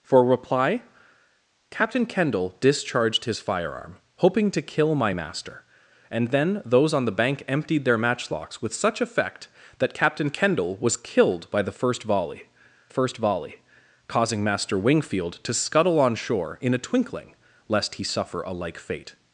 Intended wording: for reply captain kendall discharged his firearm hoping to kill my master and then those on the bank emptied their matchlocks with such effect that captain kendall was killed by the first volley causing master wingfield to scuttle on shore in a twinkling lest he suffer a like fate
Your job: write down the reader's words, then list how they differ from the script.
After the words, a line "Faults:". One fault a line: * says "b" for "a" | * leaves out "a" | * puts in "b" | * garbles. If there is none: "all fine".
for reply captain kendall discharged his firearm hoping to kill my master and then those on the bank emptied their matchlocks with such effect that captain kendall was killed by the first volley first volley causing master wingfield to scuttle on shore in a twinkling lest he suffer a like fate
Faults:
* puts in "first volley"